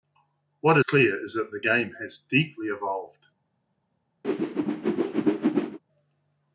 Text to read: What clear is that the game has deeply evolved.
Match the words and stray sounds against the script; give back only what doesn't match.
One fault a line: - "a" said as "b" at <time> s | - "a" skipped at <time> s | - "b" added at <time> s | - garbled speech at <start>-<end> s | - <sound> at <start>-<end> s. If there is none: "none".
- whoosh at 4.2-5.8 s